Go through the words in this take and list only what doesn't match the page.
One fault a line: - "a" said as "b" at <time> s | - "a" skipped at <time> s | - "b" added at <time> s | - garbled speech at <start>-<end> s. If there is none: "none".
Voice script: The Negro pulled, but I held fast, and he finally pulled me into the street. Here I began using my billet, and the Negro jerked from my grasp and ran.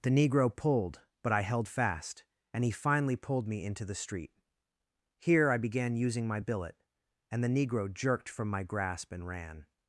none